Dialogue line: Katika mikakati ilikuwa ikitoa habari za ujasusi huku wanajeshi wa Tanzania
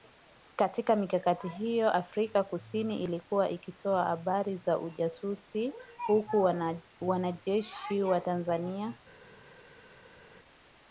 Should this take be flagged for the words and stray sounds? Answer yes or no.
yes